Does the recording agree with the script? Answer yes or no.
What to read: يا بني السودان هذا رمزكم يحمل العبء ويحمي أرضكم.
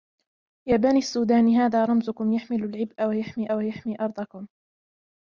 no